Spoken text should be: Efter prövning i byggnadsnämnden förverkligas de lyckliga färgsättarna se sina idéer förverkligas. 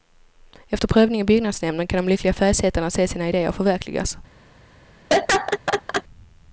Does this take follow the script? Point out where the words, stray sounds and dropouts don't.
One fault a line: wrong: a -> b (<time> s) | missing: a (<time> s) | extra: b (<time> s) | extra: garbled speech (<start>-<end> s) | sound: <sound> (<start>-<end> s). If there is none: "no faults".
wrong: förverkligas -> kan (1.9 s)
sound: laugh (5.1-6.0 s)